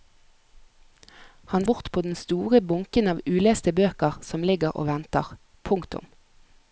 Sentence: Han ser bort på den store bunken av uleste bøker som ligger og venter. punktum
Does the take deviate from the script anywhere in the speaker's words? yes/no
yes